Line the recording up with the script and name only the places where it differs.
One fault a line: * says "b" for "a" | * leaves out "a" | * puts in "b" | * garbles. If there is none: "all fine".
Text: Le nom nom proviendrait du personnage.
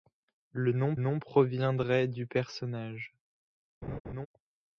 all fine